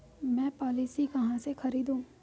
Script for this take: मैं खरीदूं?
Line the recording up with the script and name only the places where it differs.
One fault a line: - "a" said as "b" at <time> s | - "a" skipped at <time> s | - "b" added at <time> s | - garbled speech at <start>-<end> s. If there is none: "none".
- "पॉलिसी कहाँ से" added at 0.5 s